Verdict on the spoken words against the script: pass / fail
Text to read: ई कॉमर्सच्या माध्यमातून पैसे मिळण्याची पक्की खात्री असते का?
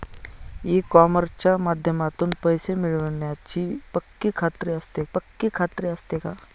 fail